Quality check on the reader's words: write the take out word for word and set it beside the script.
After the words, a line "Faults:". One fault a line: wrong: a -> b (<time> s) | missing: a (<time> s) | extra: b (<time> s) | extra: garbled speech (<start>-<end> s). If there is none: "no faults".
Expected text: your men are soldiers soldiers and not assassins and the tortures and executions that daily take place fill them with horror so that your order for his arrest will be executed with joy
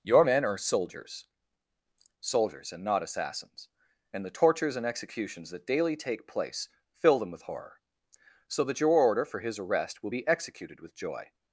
your men are soldiers soldiers and not assassins and the tortures and executions that daily take place fill them with horror so that your order for his arrest will be executed with joy
Faults:
no faults